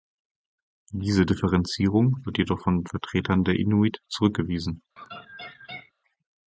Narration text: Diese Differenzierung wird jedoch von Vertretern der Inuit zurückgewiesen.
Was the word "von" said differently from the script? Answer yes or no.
no